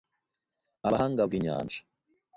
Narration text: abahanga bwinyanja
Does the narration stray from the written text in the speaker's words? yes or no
no